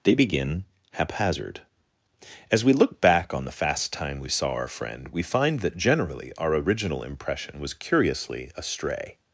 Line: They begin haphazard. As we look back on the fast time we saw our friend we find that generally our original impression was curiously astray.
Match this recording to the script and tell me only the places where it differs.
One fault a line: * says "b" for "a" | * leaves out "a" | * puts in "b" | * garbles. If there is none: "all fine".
all fine